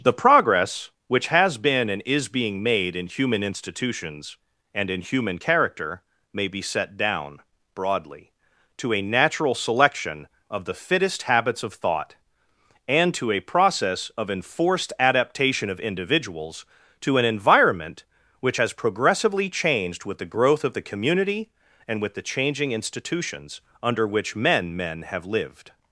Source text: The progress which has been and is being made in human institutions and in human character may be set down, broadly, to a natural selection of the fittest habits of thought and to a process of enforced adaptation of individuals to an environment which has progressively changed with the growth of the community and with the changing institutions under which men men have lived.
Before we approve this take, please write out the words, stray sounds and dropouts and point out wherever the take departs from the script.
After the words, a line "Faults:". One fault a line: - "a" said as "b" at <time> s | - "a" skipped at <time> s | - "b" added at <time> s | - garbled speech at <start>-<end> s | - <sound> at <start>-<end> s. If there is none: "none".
The progress which has been and is being made in human institutions and in human character may be set down, broadly, to a natural selection of the fittest habits of thought and to a process of enforced adaptation of individuals to an environment which has progressively changed with the growth of the community and with the changing institutions under which men men have lived.
Faults:
none